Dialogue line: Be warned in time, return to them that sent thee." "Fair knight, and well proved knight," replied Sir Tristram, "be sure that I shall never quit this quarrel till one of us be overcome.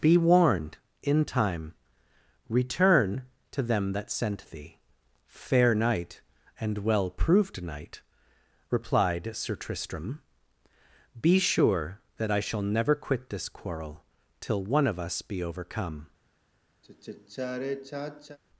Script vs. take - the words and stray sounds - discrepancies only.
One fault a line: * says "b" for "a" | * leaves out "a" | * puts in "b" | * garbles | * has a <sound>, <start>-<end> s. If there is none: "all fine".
* has a sigh, 16.8-18.4 s